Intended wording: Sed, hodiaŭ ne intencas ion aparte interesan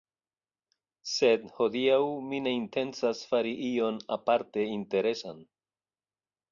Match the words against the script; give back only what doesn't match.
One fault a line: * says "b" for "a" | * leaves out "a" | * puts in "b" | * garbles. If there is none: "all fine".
* puts in "mi"
* puts in "fari"